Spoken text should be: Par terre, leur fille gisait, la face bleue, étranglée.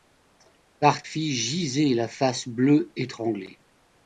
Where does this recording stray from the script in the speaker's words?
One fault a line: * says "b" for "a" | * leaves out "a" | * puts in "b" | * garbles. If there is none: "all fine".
* leaves out "terre leur"